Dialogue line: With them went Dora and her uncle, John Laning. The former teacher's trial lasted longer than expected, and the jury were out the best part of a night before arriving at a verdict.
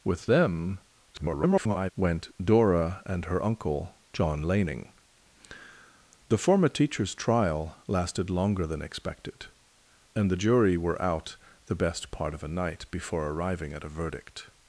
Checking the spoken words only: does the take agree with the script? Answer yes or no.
no